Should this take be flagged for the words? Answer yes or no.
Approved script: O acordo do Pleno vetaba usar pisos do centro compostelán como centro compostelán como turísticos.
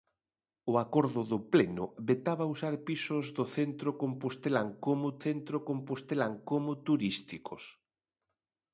no